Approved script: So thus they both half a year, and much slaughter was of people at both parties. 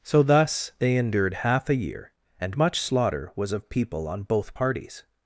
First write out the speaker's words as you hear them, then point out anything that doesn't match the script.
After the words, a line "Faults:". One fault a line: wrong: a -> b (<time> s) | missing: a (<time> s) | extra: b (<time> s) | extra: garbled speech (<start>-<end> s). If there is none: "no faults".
So thus they endured half a year, and much slaughter was of people on both parties.
Faults:
wrong: both -> endured (0.9 s)
wrong: at -> on (4.1 s)